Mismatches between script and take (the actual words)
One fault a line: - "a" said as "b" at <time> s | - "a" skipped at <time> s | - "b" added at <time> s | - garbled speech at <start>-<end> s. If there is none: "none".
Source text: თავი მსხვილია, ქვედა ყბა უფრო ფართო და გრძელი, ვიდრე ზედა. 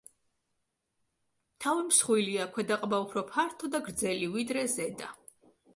none